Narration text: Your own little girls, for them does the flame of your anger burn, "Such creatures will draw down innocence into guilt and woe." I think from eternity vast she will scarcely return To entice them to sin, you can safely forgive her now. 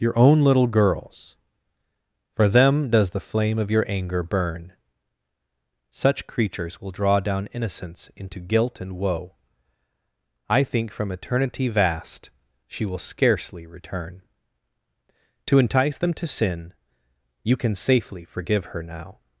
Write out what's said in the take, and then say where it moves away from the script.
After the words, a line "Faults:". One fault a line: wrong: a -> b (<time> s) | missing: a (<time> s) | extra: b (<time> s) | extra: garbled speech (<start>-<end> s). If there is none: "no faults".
Your own little girls, for them does the flame of your anger burn, "Such creatures will draw down innocence into guilt and woe." I think from eternity vast she will scarcely return To entice them to sin, you can safely forgive her now.
Faults:
no faults